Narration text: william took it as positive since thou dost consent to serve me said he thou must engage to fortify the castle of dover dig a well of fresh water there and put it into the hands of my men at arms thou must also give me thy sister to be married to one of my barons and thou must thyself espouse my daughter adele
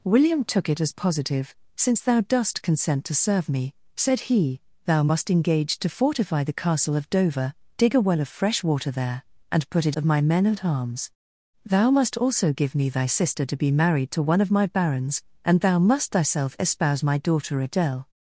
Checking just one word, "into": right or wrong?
wrong